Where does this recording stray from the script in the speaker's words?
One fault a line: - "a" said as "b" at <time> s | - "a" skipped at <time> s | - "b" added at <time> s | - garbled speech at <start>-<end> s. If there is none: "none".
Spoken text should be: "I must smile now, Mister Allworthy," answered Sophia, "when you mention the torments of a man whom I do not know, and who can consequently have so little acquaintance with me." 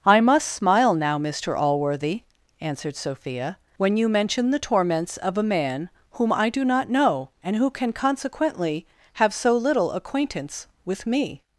none